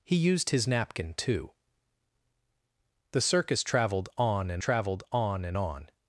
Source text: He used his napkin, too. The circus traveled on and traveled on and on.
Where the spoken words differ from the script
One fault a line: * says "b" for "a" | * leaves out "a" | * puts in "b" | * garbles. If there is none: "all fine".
all fine